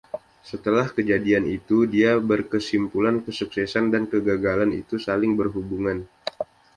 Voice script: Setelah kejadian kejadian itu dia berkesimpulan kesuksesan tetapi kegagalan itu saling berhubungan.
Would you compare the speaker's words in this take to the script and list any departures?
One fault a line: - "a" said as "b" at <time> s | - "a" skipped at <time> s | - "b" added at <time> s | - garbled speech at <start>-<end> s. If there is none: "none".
- "kejadian" skipped at 1.4 s
- "tetapi" said as "dan" at 3.9 s